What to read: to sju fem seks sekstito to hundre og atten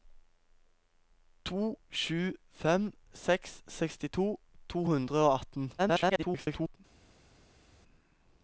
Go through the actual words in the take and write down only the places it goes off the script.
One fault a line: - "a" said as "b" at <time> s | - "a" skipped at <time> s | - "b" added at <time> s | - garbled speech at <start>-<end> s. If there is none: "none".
- garbled speech at 5.8-6.8 s